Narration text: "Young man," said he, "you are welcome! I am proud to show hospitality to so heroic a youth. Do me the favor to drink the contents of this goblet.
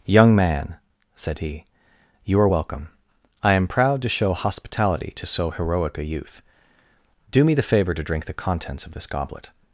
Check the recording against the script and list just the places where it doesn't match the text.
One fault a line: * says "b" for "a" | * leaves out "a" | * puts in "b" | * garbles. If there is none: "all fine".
all fine